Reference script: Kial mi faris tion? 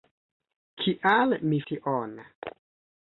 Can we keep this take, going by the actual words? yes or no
no